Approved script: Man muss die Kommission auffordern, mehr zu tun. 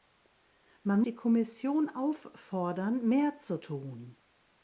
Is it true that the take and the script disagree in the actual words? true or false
true